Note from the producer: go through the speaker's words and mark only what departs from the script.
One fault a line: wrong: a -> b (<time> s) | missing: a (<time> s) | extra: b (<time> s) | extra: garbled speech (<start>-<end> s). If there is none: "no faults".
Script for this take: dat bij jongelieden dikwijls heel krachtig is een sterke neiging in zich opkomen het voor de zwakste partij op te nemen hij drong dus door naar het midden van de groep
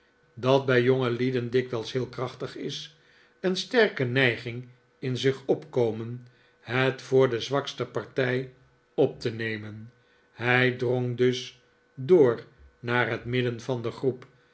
no faults